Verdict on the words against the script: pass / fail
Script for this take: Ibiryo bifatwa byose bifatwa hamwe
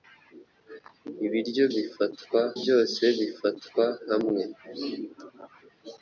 pass